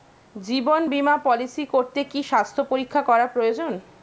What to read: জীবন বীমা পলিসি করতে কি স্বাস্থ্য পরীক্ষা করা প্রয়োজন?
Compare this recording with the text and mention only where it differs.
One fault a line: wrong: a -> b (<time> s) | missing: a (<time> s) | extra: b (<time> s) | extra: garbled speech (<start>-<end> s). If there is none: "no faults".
no faults